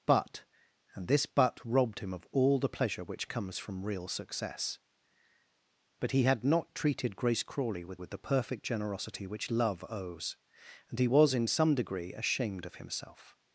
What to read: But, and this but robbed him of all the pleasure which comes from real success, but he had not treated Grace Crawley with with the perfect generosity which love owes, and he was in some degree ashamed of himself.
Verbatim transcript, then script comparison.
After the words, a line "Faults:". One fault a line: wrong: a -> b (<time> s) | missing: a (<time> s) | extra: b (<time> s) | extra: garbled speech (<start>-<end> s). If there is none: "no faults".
But, and this but robbed him of all the pleasure which comes from real success, but he had not treated Grace Crawley with with the perfect generosity which love owes, and he was in some degree ashamed of himself.
Faults:
no faults